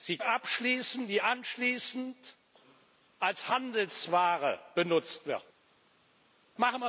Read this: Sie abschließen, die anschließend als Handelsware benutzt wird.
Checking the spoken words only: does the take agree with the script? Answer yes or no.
yes